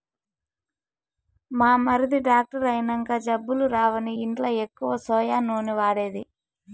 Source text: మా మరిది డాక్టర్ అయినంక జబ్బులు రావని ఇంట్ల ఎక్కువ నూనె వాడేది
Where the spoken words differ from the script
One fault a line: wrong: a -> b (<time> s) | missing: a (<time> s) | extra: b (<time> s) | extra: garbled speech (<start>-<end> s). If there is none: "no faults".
extra: సోయా (5.1 s)